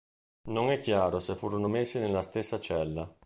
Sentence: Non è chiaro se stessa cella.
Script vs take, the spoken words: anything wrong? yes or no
yes